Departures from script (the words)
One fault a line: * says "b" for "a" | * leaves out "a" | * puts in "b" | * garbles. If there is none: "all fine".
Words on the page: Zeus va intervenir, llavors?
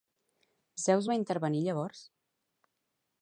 all fine